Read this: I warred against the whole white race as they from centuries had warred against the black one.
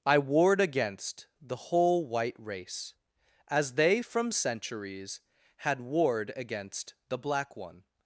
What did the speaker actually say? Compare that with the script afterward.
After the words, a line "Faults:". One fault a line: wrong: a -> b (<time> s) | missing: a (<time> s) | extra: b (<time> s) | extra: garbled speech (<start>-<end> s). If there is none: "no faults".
I warred against the whole white race as they from centuries had warred against the black one.
Faults:
no faults